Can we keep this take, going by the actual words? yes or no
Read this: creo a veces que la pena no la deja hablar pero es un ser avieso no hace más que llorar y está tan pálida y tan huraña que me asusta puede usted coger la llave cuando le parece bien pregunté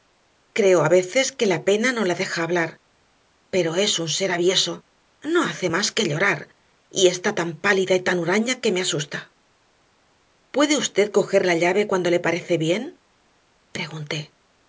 yes